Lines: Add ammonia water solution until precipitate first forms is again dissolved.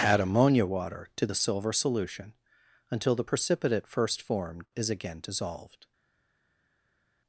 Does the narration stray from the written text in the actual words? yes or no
yes